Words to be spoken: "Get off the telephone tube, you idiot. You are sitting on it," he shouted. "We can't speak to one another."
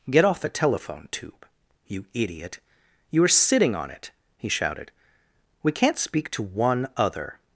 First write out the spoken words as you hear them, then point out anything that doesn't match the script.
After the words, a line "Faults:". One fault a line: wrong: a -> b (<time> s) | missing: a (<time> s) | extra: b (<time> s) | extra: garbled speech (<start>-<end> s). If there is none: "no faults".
"Get off the telephone tube, you idiot. You are sitting on it," he shouted. "We can't speak to one other."
Faults:
wrong: another -> other (7.0 s)